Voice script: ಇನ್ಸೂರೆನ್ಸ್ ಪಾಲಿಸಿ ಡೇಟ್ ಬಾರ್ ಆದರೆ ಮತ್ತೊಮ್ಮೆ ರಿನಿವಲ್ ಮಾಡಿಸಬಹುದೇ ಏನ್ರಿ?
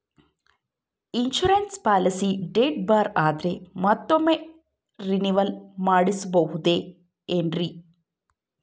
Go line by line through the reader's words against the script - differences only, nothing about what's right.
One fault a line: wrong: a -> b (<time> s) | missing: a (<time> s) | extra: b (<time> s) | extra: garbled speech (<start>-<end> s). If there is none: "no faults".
no faults